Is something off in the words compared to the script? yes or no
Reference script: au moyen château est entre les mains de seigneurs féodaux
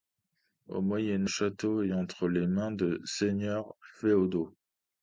no